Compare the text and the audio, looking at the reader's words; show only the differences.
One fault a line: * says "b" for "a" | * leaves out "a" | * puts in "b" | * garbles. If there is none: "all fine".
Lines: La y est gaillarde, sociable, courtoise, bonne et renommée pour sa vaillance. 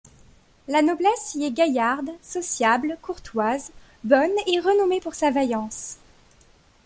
* puts in "noblesse"